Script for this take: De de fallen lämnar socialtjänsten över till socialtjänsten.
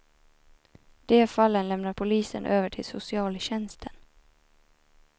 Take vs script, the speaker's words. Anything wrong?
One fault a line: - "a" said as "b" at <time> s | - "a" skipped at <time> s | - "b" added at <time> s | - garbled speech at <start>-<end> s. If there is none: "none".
- "de" skipped at 1.3 s
- "socialtjänsten" said as "polisen" at 1.9 s